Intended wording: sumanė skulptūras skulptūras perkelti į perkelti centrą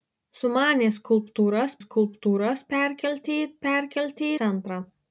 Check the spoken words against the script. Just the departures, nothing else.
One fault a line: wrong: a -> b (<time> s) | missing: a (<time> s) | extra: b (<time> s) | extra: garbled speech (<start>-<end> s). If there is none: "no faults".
no faults